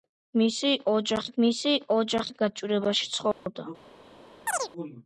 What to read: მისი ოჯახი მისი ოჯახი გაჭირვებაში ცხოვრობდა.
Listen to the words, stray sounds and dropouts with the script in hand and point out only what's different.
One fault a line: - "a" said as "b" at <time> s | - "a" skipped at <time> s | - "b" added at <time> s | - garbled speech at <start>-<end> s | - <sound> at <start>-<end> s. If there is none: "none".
- dropout at 3.3-3.5 s
- chirp at 4.5-4.7 s